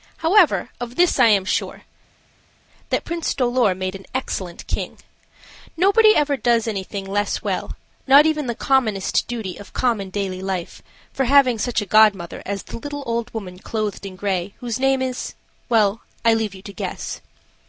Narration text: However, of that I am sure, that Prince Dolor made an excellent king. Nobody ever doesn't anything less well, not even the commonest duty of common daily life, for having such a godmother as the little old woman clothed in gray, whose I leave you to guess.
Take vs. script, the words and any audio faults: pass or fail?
fail